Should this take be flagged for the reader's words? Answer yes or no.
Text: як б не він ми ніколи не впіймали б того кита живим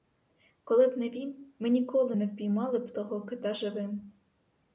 yes